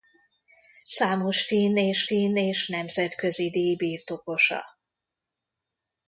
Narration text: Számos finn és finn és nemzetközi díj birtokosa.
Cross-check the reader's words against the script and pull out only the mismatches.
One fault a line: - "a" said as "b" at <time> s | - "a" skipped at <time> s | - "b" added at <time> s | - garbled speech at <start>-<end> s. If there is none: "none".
none